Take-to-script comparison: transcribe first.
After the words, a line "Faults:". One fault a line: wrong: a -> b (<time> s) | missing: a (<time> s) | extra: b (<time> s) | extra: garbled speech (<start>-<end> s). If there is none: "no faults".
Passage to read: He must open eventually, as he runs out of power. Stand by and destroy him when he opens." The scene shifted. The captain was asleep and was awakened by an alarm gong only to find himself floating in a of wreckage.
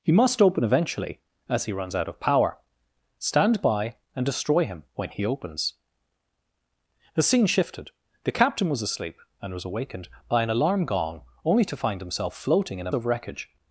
He must open eventually, as he runs out of power. Stand by and destroy him when he opens." The scene shifted. The captain was asleep and was awakened by an alarm gong only to find himself floating in a of wreckage.
Faults:
no faults